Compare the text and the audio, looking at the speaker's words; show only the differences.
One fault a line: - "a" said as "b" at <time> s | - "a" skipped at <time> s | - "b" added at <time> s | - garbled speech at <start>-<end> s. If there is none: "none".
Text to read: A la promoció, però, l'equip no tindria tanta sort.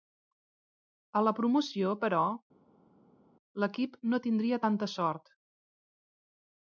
none